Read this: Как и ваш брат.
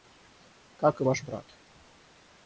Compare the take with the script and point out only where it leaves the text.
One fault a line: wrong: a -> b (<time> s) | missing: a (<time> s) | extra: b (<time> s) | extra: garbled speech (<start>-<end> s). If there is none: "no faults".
no faults